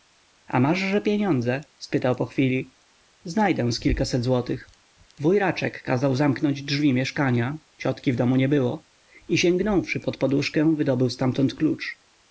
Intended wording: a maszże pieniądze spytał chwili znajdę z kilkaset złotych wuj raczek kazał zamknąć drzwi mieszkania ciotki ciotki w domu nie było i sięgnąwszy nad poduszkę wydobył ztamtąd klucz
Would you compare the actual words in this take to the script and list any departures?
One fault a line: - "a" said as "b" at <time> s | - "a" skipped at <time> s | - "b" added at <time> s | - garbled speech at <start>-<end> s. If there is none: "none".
- "po" added at 2.1 s
- "ciotki" skipped at 8.1 s
- "nad" said as "pod" at 10.0 s